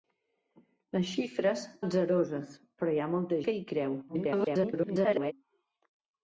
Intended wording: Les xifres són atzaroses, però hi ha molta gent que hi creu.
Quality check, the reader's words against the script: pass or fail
fail